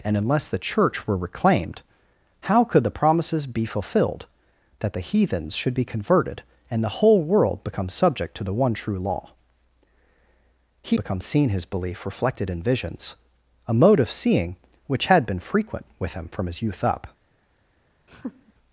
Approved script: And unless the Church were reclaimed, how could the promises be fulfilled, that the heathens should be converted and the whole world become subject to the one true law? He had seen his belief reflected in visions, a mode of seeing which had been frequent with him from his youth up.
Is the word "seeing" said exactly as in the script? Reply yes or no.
yes